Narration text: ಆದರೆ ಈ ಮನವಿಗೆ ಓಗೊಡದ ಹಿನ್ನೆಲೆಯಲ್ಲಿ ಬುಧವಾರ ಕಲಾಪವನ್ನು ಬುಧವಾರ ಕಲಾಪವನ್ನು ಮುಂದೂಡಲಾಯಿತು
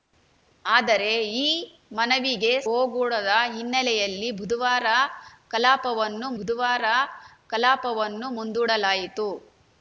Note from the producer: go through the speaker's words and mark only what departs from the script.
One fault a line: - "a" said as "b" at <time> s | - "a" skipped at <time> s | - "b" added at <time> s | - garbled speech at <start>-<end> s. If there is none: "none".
none